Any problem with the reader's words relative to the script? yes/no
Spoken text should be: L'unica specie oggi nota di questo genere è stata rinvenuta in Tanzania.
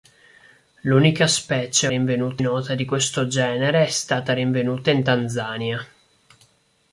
yes